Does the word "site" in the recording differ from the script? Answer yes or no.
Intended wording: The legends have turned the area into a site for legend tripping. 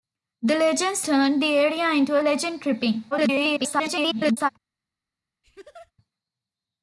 yes